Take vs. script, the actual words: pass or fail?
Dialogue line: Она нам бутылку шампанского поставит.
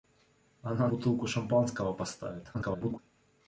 fail